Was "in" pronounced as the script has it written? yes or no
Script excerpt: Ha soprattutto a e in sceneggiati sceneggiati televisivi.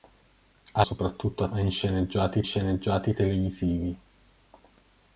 yes